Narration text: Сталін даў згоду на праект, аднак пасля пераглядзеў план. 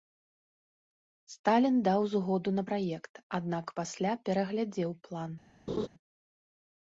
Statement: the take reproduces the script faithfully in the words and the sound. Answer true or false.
false